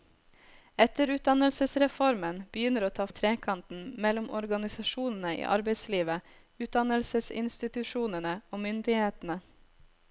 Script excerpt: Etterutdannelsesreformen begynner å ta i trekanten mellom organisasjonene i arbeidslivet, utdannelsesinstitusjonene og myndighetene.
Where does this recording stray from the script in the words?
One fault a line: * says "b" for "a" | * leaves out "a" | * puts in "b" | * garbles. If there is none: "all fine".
all fine